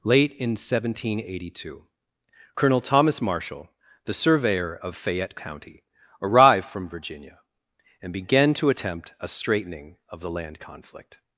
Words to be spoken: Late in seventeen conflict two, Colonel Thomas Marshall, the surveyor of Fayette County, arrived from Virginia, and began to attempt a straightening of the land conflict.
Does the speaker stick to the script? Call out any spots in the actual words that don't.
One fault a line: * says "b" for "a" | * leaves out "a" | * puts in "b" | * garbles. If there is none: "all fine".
* says "eighty" for "conflict"